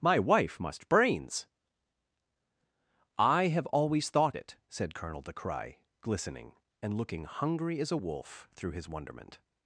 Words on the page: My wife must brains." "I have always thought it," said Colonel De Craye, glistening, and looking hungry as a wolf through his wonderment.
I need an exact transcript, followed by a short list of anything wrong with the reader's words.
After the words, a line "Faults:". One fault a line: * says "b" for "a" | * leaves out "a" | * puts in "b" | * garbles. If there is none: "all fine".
My wife must brains." "I have always thought it," said Colonel De Craye, glistening, and looking hungry as a wolf through his wonderment.
Faults:
all fine